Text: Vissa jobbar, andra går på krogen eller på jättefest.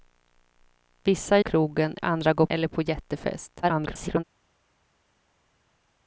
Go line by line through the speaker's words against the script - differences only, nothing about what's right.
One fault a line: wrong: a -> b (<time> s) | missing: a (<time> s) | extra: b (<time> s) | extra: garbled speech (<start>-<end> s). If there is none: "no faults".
wrong: jobbar -> krogen (1.4 s)
missing: på krogen (2.5 s)
extra: garbled speech (3.6-4.2 s)